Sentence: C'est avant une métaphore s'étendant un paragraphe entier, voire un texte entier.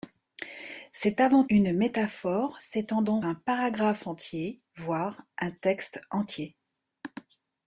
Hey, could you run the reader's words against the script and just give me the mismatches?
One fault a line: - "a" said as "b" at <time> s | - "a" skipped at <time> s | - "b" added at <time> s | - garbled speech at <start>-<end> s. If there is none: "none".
none